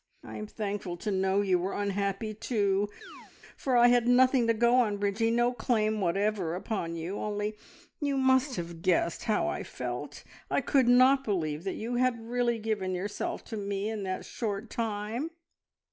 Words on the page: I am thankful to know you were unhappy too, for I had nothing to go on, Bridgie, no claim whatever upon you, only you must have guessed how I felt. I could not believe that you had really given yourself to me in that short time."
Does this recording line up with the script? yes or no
yes